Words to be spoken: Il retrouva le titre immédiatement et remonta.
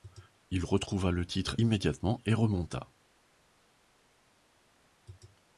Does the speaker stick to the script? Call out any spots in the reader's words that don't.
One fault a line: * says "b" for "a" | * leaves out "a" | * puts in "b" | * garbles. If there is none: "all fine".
all fine